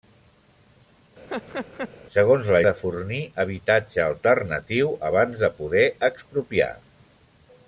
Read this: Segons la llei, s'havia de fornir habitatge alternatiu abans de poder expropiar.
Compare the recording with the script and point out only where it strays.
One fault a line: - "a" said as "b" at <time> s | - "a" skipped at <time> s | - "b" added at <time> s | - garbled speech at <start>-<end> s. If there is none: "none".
- "llei s'havia" skipped at 2.6 s